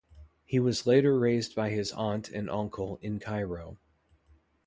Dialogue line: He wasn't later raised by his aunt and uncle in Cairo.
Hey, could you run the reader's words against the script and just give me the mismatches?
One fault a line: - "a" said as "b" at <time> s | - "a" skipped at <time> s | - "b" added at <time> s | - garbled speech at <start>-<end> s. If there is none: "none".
- "wasn't" said as "was" at 0.6 s